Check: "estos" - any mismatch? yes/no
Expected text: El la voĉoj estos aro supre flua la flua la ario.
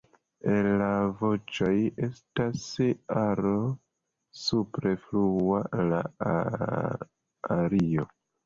yes